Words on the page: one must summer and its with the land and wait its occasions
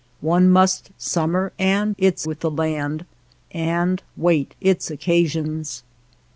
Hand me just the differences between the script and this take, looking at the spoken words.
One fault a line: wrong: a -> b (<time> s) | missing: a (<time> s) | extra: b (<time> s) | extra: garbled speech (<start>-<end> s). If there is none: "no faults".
no faults